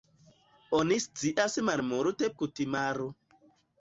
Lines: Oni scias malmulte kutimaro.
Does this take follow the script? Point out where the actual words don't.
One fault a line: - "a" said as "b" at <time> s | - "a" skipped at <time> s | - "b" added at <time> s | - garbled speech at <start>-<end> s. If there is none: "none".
none